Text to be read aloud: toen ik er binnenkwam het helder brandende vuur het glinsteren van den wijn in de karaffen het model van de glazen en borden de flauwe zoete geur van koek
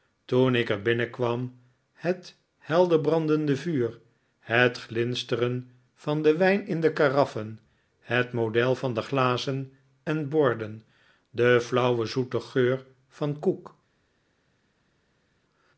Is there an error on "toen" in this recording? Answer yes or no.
no